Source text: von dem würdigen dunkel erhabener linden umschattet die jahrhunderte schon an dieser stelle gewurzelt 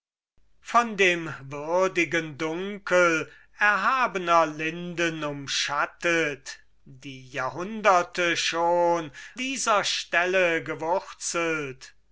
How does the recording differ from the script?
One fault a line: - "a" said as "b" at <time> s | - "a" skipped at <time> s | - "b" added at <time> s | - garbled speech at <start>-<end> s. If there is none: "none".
- "an" skipped at 9.1 s